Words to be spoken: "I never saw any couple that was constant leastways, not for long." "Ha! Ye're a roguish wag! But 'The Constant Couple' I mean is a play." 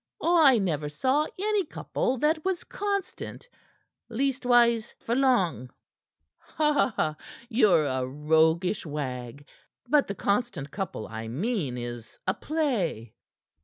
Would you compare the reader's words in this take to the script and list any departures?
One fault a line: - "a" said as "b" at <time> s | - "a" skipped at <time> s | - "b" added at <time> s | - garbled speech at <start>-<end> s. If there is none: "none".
- "not" skipped at 5.0 s